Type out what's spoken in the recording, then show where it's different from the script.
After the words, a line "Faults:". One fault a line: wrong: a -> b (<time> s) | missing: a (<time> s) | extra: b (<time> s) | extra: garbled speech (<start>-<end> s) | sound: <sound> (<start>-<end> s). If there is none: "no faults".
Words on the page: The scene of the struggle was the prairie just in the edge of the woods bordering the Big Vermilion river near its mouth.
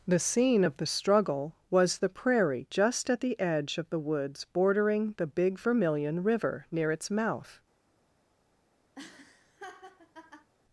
The scene of the struggle was the prairie just at the edge of the woods bordering the Big Vermilion river near its mouth.
Faults:
wrong: in -> at (3.1 s)
sound: laugh (8.9-10.5 s)